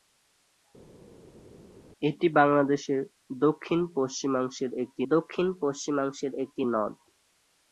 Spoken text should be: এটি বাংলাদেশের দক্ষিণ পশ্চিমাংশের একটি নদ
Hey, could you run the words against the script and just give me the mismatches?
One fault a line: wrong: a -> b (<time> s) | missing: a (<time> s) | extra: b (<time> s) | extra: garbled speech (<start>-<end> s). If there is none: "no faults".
extra: দক্ষিণ পশ্চিমাংশের একটি (5.1 s)